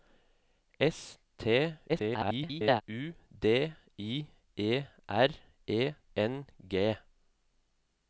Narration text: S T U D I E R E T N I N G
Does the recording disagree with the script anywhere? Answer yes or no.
yes